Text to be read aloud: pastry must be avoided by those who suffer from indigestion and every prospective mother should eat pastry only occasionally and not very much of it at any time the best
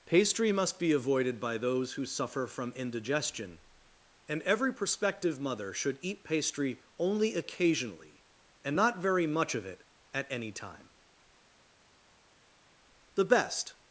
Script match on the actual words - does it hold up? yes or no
yes